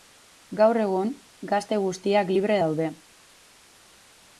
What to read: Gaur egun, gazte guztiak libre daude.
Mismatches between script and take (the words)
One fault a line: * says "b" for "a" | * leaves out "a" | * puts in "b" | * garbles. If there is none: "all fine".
all fine